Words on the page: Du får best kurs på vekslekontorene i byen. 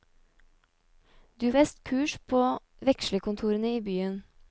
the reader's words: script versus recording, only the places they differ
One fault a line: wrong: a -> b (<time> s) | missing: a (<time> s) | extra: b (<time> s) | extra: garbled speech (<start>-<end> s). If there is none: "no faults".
missing: får (1.5 s)